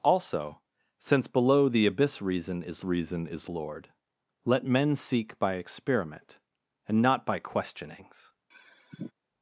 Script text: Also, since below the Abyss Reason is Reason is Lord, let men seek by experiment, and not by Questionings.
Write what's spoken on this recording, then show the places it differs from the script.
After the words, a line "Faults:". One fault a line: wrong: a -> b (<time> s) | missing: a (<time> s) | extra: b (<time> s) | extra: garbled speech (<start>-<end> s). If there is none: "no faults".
Also, since below the Abyss Reason is Reason is Lord, let men seek by experiment, and not by Questionings.
Faults:
no faults